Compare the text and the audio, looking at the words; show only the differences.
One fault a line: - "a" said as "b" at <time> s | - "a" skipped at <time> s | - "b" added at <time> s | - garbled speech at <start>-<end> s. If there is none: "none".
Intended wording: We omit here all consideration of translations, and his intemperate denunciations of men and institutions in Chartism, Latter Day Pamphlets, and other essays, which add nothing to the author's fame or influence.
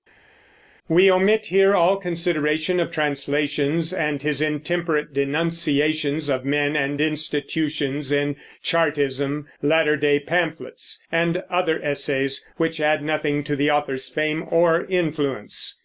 none